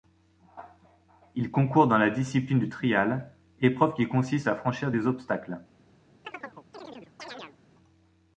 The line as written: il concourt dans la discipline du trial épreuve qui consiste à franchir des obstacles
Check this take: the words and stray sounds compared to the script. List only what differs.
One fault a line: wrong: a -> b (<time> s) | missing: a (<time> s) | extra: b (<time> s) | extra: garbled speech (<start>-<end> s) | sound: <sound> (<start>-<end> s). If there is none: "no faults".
sound: chirp (6.2-7.6 s)